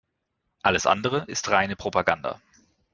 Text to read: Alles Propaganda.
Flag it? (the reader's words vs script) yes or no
yes